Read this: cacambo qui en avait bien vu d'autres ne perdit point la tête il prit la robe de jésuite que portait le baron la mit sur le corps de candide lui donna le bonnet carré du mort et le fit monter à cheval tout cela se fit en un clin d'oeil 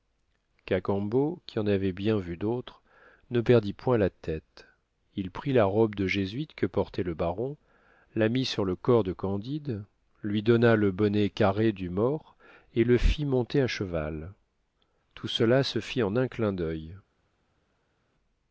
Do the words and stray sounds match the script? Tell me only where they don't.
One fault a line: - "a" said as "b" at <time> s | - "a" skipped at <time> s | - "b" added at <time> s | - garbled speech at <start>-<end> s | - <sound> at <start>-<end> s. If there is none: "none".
none